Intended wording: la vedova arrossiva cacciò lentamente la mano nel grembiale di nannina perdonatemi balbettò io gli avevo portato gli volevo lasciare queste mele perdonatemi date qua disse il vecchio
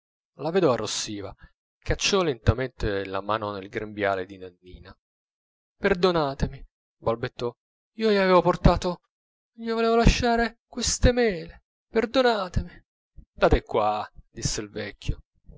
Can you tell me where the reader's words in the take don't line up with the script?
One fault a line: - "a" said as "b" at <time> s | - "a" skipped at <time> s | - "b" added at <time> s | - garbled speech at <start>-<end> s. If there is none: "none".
none